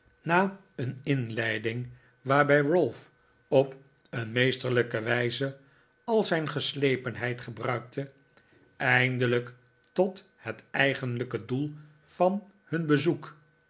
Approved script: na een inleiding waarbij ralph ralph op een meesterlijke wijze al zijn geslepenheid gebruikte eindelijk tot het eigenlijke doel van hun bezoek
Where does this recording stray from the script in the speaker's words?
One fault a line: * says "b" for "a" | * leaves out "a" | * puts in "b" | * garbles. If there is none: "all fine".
* leaves out "ralph"